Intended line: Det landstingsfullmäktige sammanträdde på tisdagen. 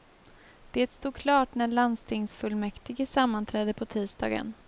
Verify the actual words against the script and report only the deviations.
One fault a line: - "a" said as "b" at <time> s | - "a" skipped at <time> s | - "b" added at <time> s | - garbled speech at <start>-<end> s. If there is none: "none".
- "stod klart när" added at 0.9 s